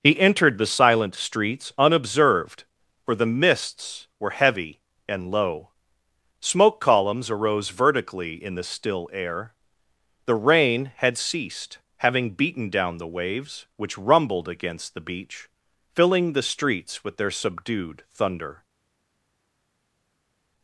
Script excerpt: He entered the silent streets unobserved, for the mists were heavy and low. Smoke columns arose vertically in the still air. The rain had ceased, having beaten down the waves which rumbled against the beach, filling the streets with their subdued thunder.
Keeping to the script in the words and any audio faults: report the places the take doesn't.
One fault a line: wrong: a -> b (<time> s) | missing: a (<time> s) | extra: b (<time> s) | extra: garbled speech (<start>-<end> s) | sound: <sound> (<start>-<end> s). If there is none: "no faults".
no faults